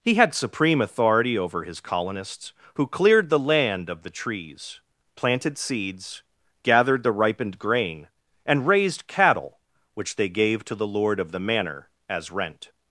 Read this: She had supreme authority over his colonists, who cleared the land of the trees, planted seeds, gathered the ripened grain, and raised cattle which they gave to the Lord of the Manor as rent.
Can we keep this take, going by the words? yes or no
no